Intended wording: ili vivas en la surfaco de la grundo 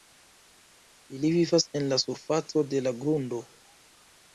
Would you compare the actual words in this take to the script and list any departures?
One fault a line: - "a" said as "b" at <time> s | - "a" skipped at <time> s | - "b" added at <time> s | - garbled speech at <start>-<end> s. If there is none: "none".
none